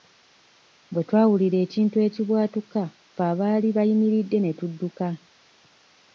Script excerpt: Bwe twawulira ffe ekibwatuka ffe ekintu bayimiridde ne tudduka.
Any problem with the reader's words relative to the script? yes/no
yes